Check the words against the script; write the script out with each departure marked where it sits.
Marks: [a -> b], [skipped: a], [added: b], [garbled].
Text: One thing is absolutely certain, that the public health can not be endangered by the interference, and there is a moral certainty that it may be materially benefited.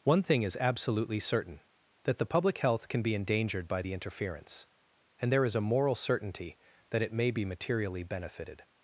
One thing is absolutely certain, that the public health can [skipped: not] be endangered by the interference, and there is a moral certainty that it may be materially benefited.